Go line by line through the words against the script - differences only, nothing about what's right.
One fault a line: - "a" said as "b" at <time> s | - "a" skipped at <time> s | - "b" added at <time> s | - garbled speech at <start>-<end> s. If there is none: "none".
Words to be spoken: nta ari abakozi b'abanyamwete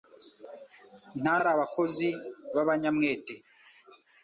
none